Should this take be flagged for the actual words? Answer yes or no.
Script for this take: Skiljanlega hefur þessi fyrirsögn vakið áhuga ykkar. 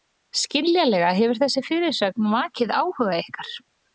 no